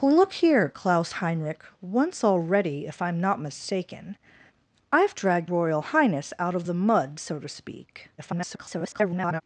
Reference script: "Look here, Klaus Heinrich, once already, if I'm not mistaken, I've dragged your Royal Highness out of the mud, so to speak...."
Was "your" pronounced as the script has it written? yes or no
no